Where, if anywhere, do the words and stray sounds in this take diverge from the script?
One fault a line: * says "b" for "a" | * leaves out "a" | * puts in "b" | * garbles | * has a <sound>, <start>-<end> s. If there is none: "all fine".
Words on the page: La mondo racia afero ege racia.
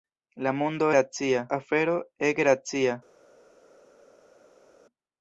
all fine